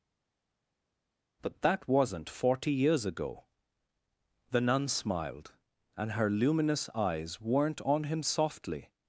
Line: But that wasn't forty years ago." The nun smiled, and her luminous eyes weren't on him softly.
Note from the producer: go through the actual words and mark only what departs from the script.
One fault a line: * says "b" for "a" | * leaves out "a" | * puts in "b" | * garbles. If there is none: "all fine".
all fine